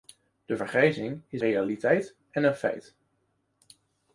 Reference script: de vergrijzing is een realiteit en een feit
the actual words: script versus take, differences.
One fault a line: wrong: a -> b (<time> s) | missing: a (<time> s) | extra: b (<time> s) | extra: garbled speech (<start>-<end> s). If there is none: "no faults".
missing: een (1.4 s)